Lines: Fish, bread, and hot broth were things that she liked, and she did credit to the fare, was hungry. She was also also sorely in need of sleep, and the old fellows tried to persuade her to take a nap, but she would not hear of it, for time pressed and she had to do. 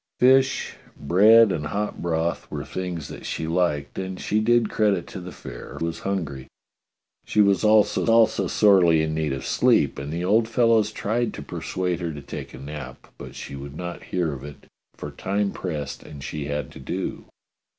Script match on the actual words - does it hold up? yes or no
yes